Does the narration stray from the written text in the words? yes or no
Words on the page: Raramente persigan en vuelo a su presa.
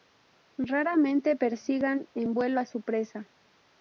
no